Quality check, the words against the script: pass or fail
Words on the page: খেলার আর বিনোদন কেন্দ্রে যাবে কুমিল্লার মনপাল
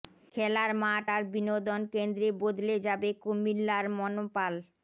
fail